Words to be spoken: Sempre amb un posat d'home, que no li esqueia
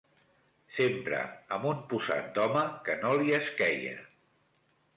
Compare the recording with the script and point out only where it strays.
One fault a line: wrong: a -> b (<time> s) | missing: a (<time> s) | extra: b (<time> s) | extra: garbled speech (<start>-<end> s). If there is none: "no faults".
no faults